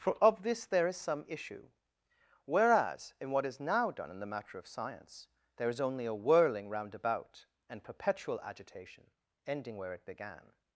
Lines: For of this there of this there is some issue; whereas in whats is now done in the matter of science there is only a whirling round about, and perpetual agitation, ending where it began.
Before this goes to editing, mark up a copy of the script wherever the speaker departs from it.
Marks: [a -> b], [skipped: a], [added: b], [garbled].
For of this there [skipped: of this there] is some issue; whereas in [whats -> what] is now done in the matter of science there is only a whirling round about, and perpetual agitation, ending where it began.